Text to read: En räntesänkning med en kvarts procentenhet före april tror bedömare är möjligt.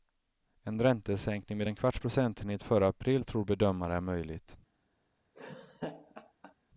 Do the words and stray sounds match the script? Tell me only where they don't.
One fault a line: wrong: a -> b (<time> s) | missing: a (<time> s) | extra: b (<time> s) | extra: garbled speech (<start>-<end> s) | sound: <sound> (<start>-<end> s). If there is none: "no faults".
sound: laugh (5.3-6.5 s)